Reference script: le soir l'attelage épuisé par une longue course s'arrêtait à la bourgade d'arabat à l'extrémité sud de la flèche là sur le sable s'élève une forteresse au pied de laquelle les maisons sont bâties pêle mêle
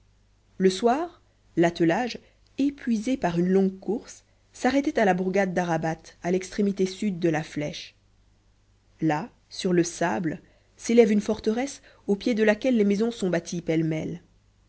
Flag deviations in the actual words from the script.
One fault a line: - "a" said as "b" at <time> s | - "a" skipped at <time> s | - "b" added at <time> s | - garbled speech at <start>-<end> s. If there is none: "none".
none